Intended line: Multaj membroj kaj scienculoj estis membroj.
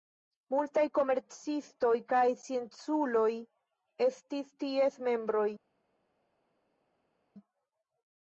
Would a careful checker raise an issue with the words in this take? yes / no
yes